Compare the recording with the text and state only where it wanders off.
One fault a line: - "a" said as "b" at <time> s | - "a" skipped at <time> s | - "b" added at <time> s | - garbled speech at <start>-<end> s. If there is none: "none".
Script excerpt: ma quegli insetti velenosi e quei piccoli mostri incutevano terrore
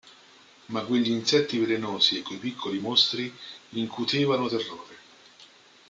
none